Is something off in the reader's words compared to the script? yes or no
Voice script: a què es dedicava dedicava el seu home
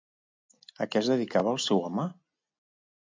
yes